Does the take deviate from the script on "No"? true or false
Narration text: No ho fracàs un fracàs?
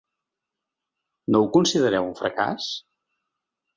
false